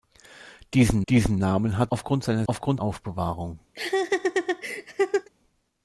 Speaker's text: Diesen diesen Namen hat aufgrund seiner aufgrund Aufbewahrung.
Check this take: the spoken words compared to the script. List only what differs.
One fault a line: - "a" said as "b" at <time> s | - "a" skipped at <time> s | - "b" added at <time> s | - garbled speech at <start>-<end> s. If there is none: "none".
none